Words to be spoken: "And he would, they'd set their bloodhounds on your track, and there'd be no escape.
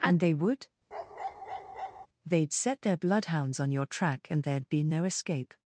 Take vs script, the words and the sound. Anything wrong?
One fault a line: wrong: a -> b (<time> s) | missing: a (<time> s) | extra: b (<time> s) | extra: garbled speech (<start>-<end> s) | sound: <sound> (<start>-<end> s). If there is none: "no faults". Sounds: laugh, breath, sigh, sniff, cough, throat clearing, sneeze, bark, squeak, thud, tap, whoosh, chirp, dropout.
wrong: he -> they (0.2 s)
sound: bark (0.9-2.1 s)